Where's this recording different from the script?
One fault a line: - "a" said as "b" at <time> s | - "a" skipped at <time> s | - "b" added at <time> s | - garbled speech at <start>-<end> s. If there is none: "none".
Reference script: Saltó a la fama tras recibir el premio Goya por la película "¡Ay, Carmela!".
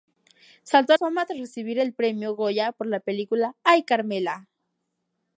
- "la" skipped at 1.0 s